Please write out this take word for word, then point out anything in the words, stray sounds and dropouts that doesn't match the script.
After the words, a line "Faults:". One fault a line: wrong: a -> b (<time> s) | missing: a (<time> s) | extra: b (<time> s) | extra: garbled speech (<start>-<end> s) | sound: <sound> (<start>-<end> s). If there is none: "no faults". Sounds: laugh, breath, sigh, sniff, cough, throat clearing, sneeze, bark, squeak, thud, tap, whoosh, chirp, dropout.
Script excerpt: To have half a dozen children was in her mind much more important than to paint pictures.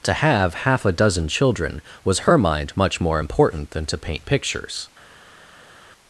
To have half a dozen children was her mind much more important than to paint pictures.
Faults:
missing: in (2.2 s)